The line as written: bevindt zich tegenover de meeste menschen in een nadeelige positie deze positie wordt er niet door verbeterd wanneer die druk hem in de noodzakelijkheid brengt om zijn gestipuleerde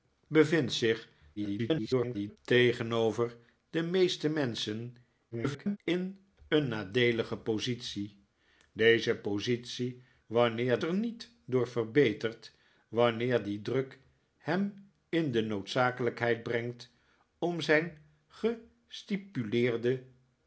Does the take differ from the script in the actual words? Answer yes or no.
yes